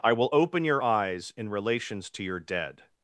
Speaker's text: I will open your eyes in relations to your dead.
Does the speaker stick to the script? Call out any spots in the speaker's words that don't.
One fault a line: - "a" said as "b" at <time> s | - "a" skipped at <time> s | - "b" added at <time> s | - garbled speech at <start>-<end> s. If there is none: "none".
none